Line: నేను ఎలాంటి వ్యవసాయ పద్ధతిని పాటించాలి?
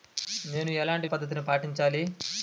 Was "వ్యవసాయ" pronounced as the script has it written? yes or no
no